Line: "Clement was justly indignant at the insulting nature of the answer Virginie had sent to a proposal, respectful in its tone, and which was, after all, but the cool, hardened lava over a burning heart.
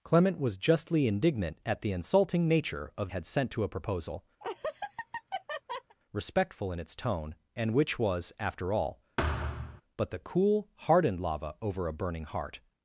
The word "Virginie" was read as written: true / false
false